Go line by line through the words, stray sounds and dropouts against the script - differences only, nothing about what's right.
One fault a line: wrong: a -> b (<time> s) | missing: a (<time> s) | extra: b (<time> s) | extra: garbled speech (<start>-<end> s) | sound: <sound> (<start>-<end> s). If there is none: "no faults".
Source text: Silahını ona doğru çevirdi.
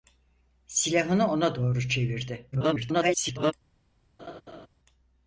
extra: garbled speech (2.5-3.5 s)
sound: laugh (4.2-4.7 s)